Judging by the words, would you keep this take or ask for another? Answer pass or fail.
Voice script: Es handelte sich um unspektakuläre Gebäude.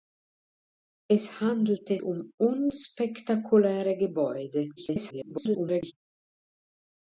fail